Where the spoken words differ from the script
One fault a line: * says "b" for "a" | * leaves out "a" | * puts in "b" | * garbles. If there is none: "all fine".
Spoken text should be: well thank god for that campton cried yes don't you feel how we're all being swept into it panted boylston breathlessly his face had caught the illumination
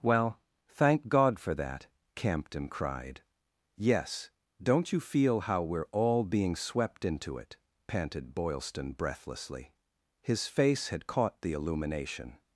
all fine